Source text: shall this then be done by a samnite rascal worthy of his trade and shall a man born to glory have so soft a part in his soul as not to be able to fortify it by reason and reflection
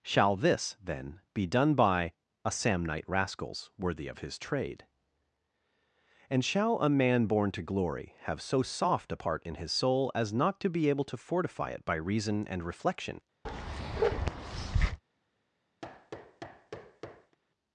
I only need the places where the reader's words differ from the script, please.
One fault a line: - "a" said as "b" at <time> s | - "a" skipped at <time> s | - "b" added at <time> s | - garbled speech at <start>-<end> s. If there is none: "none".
- "rascal" said as "rascals" at 3.1 s